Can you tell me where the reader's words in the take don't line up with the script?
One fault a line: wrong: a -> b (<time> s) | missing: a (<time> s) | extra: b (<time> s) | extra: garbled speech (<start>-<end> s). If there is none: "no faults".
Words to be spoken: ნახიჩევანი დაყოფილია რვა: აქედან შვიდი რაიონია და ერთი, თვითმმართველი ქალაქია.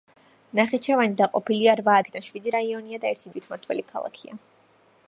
no faults